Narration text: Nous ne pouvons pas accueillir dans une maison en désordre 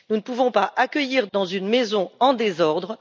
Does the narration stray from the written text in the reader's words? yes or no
no